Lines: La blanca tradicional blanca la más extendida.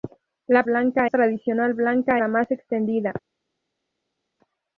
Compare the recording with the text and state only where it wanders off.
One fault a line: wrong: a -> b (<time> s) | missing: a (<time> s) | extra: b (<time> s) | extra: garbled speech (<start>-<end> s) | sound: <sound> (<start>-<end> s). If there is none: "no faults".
no faults